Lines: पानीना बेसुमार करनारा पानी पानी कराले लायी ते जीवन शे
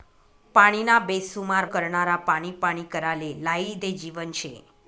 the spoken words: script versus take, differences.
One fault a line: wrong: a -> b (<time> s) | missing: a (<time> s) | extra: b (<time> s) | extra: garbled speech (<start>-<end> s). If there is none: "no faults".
no faults